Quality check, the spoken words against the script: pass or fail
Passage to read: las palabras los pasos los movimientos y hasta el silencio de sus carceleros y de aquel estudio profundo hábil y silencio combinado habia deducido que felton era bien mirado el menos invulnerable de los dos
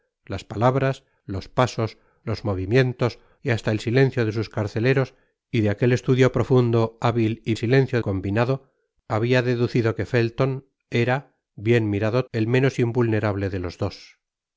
pass